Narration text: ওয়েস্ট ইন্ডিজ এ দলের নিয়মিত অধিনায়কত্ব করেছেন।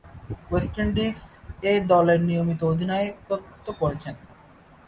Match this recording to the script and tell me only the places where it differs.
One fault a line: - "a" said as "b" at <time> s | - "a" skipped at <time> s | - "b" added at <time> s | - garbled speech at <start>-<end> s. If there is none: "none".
none